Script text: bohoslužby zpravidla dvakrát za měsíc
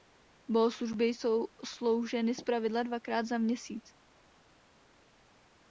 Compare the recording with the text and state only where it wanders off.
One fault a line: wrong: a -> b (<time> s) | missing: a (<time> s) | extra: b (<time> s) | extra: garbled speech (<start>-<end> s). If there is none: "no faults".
extra: jsou slouženy (1.1 s)